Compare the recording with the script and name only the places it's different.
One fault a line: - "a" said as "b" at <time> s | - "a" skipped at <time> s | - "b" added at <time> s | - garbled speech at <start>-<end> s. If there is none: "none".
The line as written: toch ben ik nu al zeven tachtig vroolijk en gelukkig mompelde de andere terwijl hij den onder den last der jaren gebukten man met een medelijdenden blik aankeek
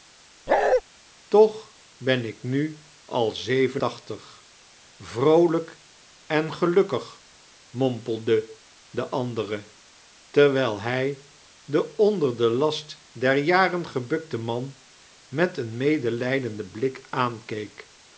none